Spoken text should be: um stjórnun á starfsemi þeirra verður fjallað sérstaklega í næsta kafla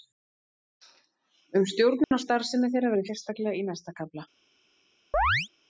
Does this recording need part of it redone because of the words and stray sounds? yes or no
yes